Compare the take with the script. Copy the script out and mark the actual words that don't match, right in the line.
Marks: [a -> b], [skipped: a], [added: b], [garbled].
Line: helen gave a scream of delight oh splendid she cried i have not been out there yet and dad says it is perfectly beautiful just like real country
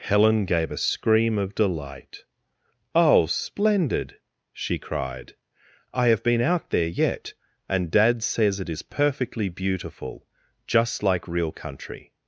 helen gave a scream of delight oh splendid she cried i have [skipped: not] been out there yet and dad says it is perfectly beautiful just like real country